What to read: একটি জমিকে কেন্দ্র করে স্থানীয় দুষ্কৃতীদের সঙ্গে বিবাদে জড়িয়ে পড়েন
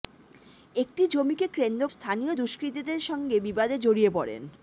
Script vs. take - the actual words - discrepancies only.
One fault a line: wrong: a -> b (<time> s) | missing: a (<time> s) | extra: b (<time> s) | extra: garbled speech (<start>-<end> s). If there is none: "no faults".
missing: করে (1.8 s)